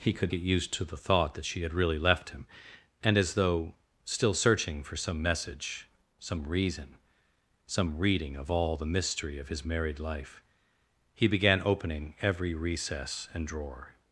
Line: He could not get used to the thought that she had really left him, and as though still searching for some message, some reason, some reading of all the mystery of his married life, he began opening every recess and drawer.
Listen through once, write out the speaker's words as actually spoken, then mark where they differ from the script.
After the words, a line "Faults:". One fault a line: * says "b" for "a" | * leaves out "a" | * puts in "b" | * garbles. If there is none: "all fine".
He could get used to the thought that she had really left him, and as though still searching for some message, some reason, some reading of all the mystery of his married life, he began opening every recess and drawer.
Faults:
* leaves out "not"